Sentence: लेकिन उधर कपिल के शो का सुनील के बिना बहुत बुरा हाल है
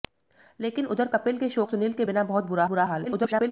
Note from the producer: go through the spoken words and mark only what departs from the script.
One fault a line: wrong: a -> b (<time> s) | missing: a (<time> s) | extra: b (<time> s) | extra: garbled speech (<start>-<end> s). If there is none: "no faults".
missing: का (1.6 s)
extra: बुरा (2.6 s)
extra: garbled speech (3.0-3.5 s)